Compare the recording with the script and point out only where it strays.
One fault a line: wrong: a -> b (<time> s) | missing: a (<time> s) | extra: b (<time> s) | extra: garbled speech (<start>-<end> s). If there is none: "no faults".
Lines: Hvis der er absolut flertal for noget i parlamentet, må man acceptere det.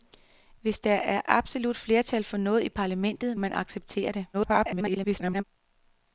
missing: må (3.4 s)
extra: garbled speech (4.3-5.4 s)